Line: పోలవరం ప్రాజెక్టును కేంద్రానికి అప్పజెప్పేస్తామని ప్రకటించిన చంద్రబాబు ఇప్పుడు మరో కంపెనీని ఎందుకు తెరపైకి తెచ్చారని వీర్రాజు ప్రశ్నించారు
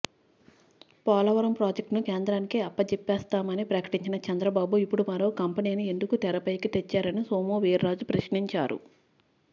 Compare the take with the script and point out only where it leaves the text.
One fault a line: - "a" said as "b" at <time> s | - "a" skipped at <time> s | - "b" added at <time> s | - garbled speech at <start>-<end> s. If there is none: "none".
- "సోము" added at 7.2 s